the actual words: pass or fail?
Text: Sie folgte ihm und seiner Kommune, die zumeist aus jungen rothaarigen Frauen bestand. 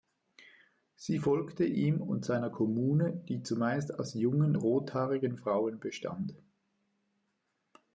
pass